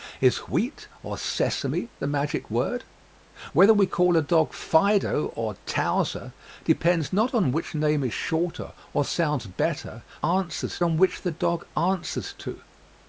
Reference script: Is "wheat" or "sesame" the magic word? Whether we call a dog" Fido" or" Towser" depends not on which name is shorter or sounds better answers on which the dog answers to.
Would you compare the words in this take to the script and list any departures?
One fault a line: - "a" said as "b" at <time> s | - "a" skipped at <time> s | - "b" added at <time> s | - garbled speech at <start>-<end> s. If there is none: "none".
none